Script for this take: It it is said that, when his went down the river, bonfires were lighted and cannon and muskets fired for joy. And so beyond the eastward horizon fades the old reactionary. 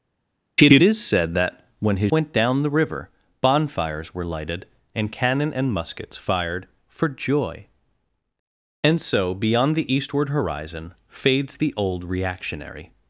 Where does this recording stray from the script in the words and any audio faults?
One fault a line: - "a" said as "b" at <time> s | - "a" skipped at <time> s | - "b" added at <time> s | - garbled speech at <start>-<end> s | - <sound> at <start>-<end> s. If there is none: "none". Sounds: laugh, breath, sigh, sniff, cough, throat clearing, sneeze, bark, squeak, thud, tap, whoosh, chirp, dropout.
none